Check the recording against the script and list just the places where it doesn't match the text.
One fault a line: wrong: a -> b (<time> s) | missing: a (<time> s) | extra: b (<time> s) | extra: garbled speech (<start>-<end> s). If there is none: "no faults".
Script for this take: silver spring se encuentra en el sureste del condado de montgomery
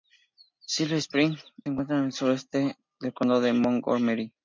missing: se (1.4 s)